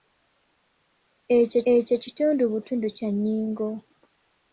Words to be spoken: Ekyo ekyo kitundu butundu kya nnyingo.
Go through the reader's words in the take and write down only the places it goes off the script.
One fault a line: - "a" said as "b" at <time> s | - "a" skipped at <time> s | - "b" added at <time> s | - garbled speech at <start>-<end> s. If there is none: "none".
none